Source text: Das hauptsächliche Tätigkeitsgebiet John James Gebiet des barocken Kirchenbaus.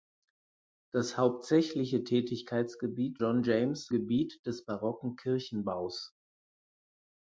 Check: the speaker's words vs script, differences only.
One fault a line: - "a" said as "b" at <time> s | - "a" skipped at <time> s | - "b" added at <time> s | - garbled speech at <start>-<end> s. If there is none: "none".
none